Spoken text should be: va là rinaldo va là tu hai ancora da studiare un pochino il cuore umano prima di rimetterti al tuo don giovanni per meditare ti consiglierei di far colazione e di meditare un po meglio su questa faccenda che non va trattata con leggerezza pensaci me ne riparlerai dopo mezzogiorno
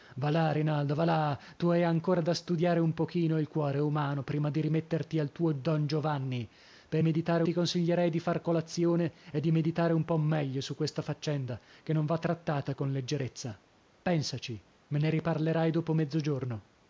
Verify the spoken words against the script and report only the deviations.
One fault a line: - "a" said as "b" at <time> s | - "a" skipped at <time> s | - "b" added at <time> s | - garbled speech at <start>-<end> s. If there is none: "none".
none